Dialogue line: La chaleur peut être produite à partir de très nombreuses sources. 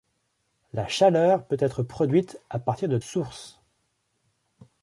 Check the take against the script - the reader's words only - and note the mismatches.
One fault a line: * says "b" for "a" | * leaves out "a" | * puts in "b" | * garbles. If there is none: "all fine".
* leaves out "très nombreuses"